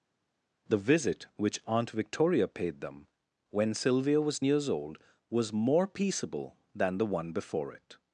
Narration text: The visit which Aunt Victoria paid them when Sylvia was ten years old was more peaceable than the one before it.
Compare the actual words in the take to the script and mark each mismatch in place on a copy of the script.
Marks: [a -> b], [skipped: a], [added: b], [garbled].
The visit which Aunt Victoria paid them when Sylvia was [skipped: ten] years old was more peaceable than the one before it.